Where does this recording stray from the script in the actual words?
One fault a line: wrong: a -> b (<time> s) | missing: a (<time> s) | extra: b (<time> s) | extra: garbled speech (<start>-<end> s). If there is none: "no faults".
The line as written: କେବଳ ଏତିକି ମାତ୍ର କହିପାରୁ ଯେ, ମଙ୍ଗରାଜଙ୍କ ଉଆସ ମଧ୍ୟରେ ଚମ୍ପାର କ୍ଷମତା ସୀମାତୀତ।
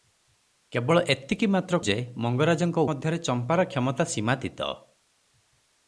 missing: କହିପାରୁ (1.8 s)
missing: ଉଆସ (2.8 s)